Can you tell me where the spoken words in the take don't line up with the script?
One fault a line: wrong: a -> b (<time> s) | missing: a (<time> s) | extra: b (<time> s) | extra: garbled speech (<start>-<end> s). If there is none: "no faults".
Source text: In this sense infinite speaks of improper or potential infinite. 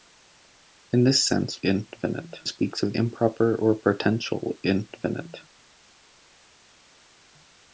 no faults